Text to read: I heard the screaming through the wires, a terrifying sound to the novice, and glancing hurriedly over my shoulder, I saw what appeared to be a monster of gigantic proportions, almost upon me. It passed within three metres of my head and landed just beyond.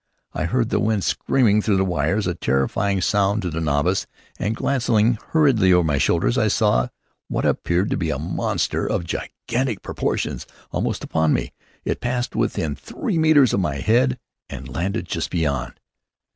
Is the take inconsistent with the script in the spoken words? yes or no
yes